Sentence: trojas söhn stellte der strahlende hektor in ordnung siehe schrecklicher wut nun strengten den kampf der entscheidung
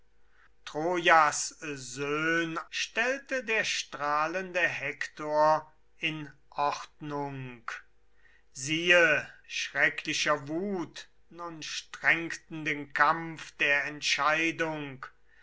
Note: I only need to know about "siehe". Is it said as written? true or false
true